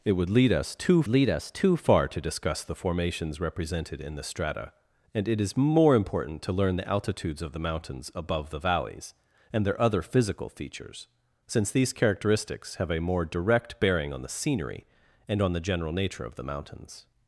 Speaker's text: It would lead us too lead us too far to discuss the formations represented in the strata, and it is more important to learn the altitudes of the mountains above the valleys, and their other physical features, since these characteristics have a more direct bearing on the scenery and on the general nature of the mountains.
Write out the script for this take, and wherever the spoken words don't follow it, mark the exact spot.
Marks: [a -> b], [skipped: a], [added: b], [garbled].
It would lead us too lead us too far to discuss the formations represented in the strata, and it is more important to learn the altitudes of the mountains above the valleys, and their other physical features, since these characteristics have a more direct bearing on the scenery and on the general nature of the mountains.